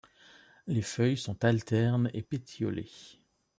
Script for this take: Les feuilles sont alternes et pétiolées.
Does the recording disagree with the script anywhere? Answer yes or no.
no